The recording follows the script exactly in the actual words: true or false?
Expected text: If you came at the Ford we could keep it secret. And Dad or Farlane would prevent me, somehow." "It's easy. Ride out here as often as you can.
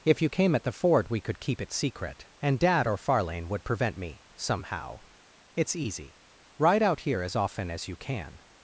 true